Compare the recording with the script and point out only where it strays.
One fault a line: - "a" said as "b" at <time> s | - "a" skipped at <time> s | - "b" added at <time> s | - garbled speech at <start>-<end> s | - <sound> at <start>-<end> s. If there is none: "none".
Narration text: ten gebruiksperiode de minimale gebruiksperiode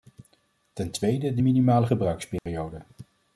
- "gebruiksperiode" said as "tweede" at 0.9 s
- dropout at 2.4-2.5 s